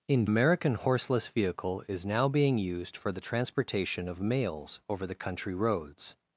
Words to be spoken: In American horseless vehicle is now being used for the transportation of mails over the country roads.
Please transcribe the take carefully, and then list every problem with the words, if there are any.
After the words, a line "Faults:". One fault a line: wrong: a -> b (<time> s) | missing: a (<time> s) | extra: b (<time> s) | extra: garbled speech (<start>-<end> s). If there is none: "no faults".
In American horseless vehicle is now being used for the transportation of mails over the country roads.
Faults:
no faults